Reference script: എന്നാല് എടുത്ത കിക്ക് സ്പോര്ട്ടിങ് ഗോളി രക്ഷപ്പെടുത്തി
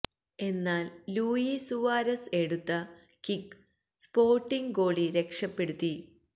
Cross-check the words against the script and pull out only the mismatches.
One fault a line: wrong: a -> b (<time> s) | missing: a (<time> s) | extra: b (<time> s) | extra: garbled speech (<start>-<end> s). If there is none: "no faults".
extra: ലൂയി സുവാരസ് (1.1 s)